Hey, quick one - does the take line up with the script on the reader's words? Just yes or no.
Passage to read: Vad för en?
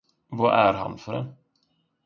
no